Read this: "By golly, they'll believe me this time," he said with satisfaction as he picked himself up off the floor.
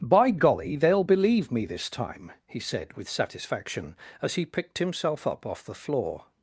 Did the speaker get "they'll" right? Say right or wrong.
right